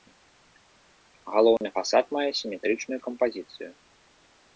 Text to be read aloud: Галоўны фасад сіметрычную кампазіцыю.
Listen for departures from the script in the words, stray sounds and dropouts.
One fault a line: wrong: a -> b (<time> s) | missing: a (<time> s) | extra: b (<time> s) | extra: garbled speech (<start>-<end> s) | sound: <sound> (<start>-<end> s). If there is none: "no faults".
sound: dropout (1.6-1.6 s)
extra: мае (2.2 s)